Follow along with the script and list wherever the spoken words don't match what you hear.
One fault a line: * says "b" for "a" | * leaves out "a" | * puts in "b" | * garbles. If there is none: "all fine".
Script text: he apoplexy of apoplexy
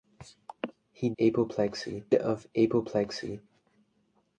all fine